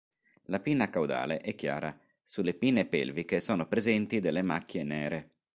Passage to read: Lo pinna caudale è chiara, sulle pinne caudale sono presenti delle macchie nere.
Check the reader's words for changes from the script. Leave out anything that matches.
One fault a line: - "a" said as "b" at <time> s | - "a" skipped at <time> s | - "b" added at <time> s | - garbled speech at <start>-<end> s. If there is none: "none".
- "Lo" said as "La" at 0.5 s
- "caudale" said as "pelviche" at 2.9 s